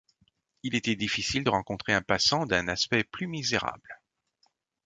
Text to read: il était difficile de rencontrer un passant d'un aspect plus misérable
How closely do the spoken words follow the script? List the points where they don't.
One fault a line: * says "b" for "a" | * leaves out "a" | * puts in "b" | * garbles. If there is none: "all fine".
all fine